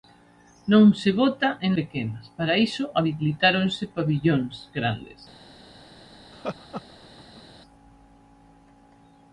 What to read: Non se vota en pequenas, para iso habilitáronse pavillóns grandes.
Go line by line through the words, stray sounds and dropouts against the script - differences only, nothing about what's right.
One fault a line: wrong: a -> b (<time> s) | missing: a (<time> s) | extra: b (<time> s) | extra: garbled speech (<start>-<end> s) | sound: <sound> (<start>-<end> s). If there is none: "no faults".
sound: laugh (6.3-7.4 s)